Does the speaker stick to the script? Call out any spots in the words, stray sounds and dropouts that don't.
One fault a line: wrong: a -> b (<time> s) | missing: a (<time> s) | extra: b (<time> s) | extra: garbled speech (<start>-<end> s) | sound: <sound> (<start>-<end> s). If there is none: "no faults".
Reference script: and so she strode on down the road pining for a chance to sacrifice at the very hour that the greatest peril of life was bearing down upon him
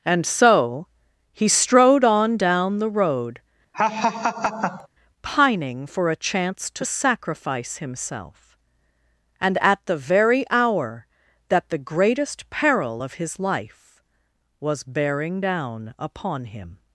wrong: she -> he (1.3 s)
sound: laugh (3.7-4.9 s)
extra: himself and (7.8 s)
extra: his (13.1 s)